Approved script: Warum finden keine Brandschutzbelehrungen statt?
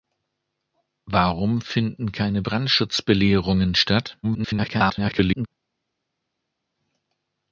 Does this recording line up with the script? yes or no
no